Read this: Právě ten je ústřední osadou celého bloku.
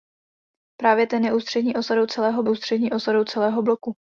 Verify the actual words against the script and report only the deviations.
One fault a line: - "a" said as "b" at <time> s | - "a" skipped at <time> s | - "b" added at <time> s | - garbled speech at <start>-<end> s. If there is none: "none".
- "ústřední osadou celého" added at 2.5 s